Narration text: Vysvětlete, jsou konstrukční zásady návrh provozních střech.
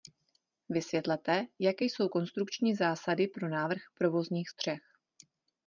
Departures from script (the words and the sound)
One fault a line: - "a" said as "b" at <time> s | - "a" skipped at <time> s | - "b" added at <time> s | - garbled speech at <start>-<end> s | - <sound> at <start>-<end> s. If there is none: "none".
- "jaké" added at 1.6 s
- "pro" added at 3.3 s